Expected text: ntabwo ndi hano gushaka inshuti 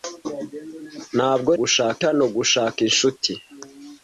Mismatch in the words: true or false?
true